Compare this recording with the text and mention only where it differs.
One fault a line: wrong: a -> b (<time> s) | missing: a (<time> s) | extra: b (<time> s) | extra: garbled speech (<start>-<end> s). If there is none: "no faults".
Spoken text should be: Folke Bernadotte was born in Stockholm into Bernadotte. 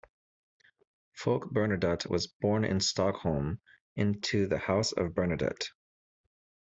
extra: the House of (4.5 s)